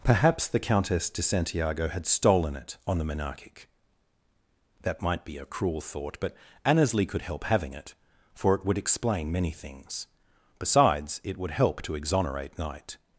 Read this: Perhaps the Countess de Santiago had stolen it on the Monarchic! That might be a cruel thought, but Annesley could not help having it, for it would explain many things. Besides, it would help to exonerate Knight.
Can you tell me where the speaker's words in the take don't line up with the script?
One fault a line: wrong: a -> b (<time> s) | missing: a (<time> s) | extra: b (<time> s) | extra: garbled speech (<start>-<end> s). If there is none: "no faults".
missing: not (7.2 s)